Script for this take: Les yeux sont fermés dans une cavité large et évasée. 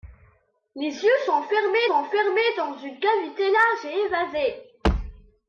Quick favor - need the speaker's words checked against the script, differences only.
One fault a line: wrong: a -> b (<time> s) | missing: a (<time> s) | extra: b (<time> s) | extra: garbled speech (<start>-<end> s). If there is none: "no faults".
extra: sont fermés (1.9 s)